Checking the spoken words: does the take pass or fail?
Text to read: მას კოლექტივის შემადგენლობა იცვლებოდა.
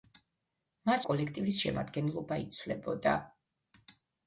pass